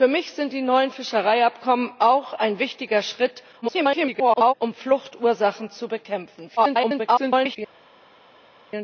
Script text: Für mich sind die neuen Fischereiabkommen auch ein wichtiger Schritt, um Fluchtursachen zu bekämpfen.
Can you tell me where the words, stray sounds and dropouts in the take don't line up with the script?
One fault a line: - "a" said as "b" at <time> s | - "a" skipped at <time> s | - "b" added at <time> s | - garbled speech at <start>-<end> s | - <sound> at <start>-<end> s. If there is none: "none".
- garbled speech at 3.6-4.5 s
- garbled speech at 6.6-7.6 s